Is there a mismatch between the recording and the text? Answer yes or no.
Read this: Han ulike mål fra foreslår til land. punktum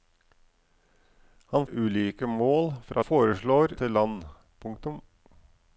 no